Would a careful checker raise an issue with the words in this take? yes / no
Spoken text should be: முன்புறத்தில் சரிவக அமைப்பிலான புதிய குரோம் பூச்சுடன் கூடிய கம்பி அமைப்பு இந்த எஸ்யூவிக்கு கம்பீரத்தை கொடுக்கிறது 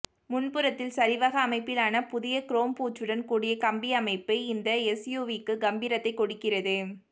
no